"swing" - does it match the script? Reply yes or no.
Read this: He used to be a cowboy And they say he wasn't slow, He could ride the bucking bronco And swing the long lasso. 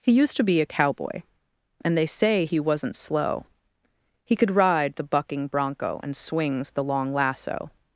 no